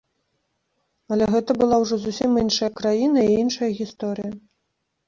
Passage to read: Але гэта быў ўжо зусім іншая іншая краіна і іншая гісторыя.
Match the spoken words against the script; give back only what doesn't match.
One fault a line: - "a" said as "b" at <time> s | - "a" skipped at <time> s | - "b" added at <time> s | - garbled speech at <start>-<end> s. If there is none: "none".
- "быў" said as "была" at 1.6 s
- "іншая" skipped at 2.7 s